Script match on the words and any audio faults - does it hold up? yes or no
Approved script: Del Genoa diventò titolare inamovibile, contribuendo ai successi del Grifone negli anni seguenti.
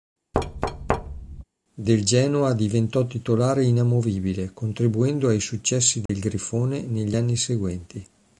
no